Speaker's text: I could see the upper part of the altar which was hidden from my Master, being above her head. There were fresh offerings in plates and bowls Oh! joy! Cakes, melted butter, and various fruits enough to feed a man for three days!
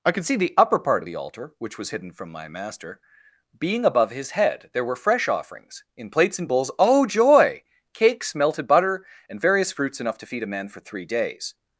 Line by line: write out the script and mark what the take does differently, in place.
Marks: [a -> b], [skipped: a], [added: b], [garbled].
I could see the upper part of the altar which was hidden from my Master, being above [her -> his] head. There were fresh offerings in plates and bowls Oh! joy! Cakes, melted butter, and various fruits enough to feed a man for three days!